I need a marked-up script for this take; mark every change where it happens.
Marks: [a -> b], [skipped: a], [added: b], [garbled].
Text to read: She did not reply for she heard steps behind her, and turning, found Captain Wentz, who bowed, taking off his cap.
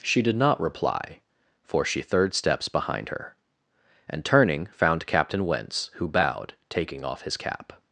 She did not reply for she [heard -> third] steps behind her, and turning, found Captain Wentz, who bowed, taking off his cap.